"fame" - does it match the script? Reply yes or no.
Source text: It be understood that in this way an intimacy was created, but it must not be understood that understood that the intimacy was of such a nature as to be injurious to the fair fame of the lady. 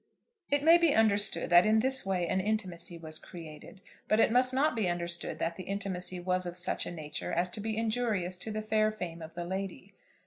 yes